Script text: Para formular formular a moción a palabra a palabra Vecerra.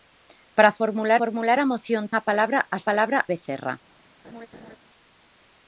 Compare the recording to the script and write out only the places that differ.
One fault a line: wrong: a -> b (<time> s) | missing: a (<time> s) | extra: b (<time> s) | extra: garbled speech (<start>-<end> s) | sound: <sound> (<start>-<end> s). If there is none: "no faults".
sound: laugh (4.2-4.8 s)